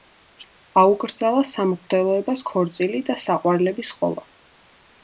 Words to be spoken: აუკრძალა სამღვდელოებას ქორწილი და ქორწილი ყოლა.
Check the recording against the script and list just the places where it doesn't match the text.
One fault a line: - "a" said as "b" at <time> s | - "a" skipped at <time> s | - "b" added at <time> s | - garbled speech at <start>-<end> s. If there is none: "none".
- "ქორწილი" said as "საყვარლების" at 3.3 s